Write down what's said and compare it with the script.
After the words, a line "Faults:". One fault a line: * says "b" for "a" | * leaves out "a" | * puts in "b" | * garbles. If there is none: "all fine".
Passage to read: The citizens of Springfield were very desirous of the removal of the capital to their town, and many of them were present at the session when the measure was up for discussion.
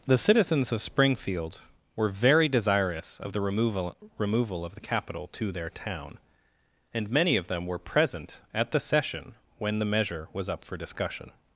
The citizens of Springfield were very desirous of the removal removal of the capital to their town, and many of them were present at the session when the measure was up for discussion.
Faults:
* puts in "removal"